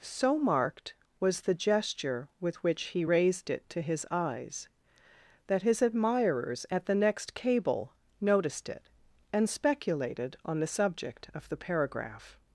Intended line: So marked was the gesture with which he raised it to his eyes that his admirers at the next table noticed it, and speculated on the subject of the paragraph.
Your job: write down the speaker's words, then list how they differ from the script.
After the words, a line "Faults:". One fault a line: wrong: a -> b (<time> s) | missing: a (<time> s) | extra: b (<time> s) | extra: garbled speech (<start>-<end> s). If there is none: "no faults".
So marked was the gesture with which he raised it to his eyes that his admirers at the next cable noticed it, and speculated on the subject of the paragraph.
Faults:
wrong: table -> cable (7.3 s)